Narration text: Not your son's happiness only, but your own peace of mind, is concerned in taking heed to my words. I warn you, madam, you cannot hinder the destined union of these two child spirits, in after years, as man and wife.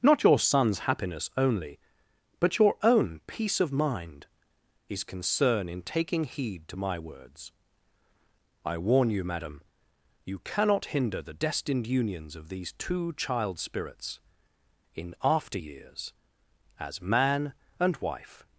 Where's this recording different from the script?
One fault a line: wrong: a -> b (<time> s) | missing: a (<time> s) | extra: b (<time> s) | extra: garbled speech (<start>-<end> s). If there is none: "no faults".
wrong: concerned -> concern (5.0 s)
wrong: union -> unions (11.9 s)